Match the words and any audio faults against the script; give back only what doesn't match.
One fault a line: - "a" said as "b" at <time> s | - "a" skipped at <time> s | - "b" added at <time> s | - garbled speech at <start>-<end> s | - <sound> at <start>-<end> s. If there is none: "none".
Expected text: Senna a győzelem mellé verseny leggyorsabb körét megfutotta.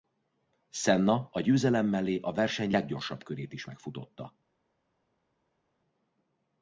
- "a" added at 2.2 s
- "is" added at 3.5 s